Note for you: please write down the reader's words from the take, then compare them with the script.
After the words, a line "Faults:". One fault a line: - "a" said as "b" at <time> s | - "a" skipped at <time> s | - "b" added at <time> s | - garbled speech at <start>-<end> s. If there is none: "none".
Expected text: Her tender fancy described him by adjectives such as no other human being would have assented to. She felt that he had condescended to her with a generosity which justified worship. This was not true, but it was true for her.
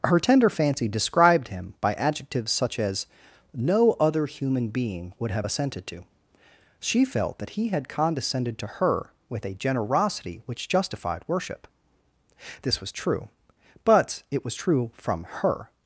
Her tender fancy described him by adjectives such as no other human being would have assented to. She felt that he had condescended to her with a generosity which justified worship. This was true, but it was true from her.
Faults:
- "not" skipped at 12.9 s
- "for" said as "from" at 14.9 s